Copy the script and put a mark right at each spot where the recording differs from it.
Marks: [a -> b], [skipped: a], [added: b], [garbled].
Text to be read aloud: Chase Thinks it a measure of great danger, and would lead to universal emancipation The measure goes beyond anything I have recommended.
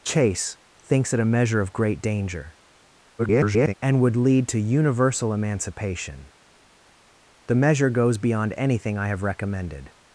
Chase Thinks it a measure of great danger, [garbled] and would lead to universal emancipation The measure goes beyond anything I have recommended.